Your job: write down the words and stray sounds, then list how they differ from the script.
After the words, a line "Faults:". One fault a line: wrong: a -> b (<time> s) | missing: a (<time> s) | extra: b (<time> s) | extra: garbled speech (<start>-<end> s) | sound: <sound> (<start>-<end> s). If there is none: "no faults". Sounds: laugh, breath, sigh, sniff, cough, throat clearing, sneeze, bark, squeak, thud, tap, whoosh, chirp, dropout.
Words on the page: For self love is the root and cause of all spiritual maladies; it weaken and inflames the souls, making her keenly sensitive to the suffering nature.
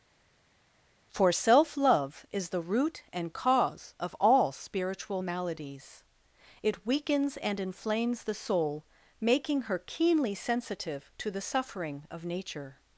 For self love is the root and cause of all spiritual maladies; it weakens and inflames the soul, making her keenly sensitive to the suffering of nature.
Faults:
wrong: weaken -> weakens (6.8 s)
wrong: souls -> soul (8.3 s)
extra: of (12.1 s)